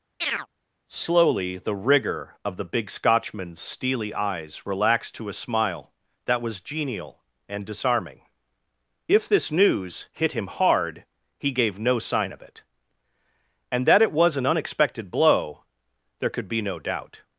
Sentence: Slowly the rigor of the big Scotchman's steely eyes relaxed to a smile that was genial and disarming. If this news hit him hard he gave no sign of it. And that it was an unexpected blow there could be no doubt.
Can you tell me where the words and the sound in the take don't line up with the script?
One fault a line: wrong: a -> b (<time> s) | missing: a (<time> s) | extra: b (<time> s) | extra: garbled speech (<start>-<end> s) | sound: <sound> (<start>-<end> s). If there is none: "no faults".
sound: chirp (0.2-0.5 s)